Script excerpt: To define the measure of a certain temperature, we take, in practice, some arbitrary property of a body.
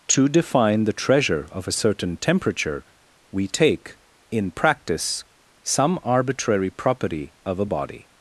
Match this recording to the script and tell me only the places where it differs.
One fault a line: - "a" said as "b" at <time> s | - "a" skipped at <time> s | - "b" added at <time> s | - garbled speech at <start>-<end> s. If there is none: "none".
- "measure" said as "treasure" at 0.9 s